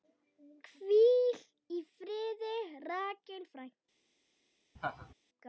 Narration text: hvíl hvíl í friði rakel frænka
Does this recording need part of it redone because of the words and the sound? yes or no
yes